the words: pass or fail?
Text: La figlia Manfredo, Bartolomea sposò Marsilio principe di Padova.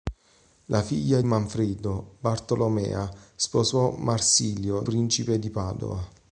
pass